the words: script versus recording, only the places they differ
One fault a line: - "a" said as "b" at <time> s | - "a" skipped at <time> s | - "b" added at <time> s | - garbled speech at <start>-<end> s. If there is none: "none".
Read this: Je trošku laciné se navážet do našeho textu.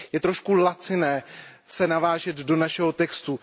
none